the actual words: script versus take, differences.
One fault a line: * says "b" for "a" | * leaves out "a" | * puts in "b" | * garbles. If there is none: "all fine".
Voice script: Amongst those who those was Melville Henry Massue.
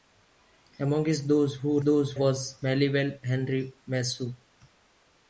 all fine